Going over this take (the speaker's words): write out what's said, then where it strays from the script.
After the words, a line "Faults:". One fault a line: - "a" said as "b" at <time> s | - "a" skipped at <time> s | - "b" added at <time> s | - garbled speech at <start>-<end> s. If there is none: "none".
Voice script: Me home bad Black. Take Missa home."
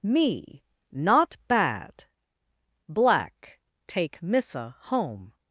Me not bad Black. Take Missa home."
Faults:
- "home" said as "not" at 0.9 s